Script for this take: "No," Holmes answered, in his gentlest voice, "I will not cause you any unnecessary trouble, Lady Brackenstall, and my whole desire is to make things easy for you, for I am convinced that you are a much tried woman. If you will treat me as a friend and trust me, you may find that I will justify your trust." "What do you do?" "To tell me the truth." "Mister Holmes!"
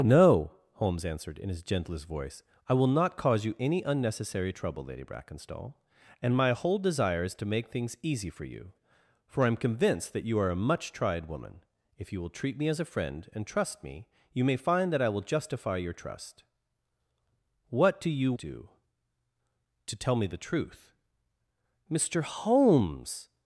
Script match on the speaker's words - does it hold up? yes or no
yes